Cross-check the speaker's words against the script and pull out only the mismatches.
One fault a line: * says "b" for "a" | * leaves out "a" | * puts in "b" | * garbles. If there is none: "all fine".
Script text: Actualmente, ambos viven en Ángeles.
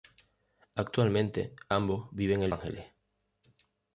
all fine